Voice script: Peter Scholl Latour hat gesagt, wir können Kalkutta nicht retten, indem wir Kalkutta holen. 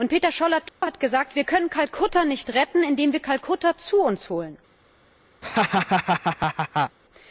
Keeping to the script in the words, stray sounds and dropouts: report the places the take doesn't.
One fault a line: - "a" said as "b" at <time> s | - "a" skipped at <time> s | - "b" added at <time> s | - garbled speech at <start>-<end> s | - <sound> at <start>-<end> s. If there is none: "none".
- dropout at 0.7-0.8 s
- "zu uns" added at 3.8 s
- laugh at 5.4-7.0 s